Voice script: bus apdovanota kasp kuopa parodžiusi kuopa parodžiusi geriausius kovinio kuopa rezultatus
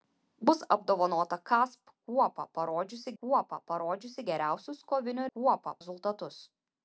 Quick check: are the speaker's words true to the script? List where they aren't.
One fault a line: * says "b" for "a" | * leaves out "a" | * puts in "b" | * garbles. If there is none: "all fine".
all fine